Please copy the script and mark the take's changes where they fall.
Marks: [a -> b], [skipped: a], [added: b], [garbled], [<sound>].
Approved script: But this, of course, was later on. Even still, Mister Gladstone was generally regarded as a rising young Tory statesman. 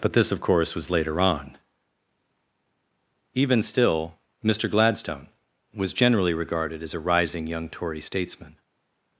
But this, of course, was later on. Even still, Mister Gladstone was generally regarded as a rising young Tory statesman.